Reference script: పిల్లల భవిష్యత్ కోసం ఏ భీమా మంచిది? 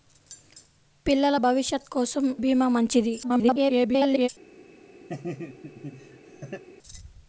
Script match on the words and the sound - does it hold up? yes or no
no